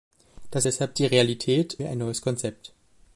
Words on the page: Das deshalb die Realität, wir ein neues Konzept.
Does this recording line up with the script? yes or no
yes